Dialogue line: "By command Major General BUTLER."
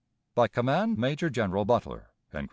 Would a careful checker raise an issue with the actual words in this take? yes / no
no